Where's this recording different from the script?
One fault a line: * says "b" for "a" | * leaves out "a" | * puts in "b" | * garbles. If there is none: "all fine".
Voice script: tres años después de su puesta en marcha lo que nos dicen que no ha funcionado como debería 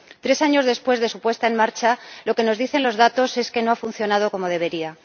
* puts in "los datos es"